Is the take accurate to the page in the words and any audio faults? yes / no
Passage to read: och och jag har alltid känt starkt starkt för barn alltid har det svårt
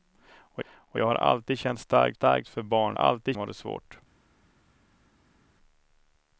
yes